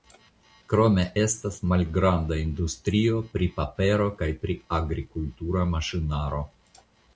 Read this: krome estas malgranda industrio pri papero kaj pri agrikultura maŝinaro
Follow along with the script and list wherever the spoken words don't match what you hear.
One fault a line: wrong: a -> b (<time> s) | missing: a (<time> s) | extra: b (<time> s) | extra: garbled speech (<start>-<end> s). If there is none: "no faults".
no faults